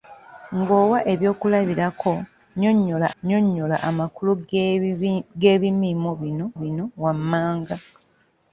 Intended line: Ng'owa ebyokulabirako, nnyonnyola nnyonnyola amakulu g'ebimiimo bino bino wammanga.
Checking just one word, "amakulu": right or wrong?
right